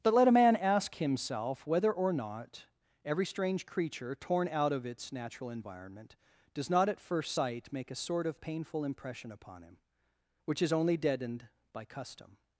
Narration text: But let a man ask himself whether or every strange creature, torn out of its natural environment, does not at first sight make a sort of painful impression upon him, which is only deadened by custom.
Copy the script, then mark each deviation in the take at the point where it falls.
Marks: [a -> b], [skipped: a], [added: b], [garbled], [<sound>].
But let a man ask himself whether or [added: not] every strange creature, torn out of its natural environment, does not at first sight make a sort of painful impression upon him, which is only deadened by custom.